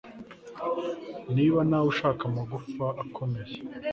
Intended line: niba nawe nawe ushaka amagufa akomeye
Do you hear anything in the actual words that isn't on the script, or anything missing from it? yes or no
yes